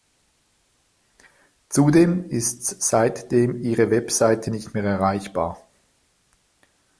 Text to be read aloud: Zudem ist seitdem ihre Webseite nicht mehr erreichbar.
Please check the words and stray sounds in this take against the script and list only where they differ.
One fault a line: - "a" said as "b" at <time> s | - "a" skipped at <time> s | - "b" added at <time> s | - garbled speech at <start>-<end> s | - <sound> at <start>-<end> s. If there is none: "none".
none